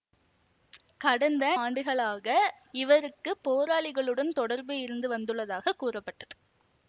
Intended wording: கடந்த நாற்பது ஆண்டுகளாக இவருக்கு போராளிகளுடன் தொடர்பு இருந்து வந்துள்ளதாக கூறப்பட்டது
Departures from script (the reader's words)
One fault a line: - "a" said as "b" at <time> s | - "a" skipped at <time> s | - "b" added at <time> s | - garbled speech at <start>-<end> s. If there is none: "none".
- "நாற்பது" skipped at 1.4 s